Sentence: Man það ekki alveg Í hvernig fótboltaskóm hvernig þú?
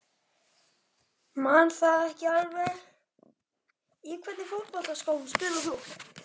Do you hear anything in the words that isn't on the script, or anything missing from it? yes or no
yes